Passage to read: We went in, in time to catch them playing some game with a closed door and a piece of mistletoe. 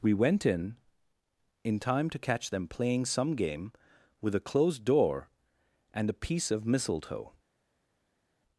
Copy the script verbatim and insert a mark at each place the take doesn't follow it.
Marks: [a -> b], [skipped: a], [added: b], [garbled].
We went in, in time to catch them playing some game with a closed door and a piece of mistletoe.